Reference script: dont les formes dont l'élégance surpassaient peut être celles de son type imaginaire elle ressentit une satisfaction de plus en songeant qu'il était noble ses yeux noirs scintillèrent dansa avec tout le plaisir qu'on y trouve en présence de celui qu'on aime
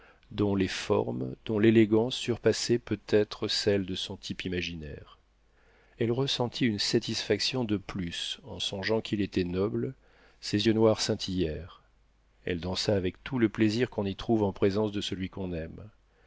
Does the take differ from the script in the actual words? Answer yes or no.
yes